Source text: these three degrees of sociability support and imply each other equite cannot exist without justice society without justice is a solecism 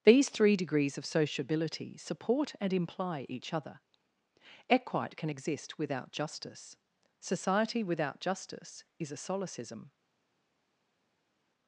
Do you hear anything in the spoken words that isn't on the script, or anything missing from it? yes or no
yes